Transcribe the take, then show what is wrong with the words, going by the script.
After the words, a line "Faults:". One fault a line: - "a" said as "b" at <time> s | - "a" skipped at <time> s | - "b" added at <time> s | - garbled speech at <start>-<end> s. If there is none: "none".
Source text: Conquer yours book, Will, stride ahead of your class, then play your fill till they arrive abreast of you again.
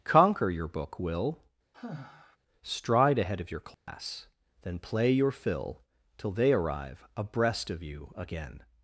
Conquer your book, Will, stride ahead of your class, then play your fill till they arrive abreast of you again.
Faults:
- "yours" said as "your" at 0.5 s